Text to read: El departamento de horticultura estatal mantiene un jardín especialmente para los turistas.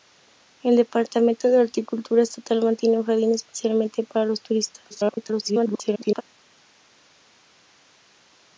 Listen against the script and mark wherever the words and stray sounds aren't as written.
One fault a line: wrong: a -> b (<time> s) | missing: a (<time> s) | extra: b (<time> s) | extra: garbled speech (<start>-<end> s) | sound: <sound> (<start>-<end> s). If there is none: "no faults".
extra: garbled speech (4.9-6.2 s)